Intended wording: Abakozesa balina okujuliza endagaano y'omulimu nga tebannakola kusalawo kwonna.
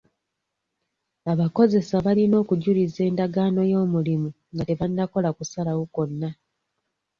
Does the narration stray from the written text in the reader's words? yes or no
no